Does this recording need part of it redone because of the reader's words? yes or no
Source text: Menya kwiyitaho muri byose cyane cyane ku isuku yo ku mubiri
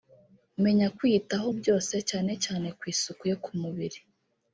yes